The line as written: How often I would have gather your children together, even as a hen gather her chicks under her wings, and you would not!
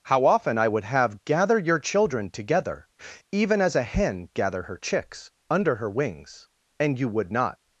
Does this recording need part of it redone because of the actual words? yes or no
no